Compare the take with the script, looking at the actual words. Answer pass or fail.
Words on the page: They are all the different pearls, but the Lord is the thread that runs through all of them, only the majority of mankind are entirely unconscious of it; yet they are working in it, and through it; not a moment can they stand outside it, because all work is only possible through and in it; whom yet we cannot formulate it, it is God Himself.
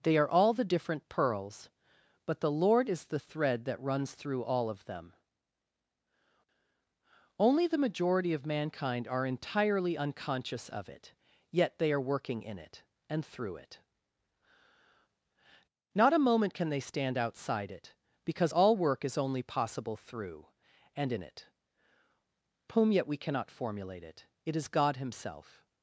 pass